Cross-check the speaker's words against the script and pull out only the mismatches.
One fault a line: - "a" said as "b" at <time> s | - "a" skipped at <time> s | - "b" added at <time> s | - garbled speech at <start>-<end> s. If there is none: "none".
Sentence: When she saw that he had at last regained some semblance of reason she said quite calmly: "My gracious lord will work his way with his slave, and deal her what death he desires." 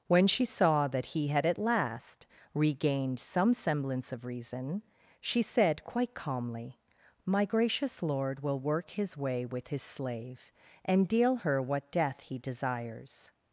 none